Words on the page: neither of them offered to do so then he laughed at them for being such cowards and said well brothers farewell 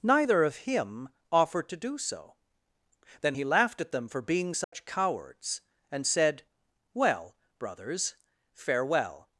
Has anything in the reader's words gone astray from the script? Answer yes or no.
yes